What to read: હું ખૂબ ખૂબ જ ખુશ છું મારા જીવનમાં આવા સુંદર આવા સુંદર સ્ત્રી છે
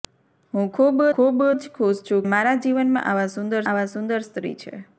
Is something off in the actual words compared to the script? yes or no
no